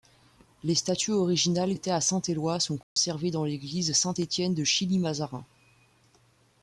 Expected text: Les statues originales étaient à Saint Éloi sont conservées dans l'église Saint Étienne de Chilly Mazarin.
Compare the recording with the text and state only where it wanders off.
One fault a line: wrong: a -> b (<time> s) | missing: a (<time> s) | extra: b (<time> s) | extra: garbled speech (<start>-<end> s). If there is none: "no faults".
no faults